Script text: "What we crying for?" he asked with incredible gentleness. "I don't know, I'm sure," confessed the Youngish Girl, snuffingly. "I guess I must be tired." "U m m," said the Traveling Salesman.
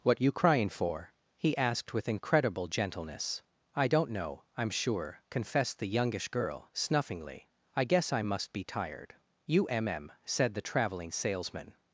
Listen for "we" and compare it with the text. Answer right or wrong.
wrong